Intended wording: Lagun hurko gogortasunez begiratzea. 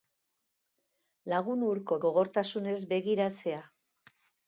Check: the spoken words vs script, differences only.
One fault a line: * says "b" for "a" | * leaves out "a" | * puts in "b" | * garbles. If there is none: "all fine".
all fine